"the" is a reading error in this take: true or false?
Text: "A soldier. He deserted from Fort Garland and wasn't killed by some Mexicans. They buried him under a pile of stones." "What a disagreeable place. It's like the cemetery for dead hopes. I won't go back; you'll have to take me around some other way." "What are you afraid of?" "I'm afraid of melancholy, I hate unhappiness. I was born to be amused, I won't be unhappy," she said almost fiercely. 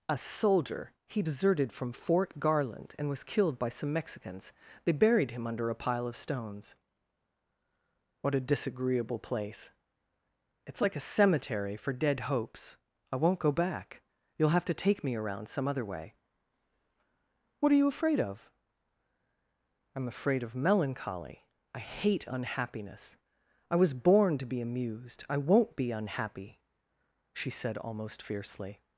true